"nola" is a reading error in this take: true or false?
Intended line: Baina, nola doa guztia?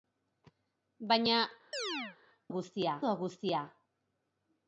true